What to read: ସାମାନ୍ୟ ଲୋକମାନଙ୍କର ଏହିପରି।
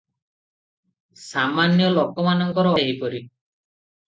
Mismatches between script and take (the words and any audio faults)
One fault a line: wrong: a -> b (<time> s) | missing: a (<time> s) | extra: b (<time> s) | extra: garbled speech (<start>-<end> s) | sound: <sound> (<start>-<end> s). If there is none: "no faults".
no faults